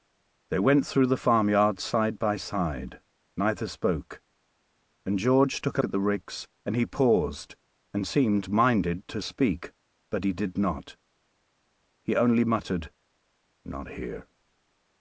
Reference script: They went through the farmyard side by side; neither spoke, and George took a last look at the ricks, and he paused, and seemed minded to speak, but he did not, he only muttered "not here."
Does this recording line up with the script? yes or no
no